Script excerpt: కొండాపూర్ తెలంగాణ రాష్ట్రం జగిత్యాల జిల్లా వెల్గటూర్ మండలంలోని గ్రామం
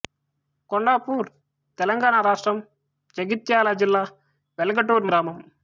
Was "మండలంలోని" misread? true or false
true